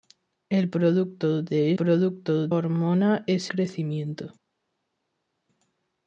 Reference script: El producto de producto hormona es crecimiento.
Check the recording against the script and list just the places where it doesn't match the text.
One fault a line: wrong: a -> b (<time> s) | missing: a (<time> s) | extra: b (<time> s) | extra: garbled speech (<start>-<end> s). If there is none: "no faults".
no faults